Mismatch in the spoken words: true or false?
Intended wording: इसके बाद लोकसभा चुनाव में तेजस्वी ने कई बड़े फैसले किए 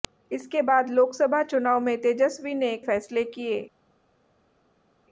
true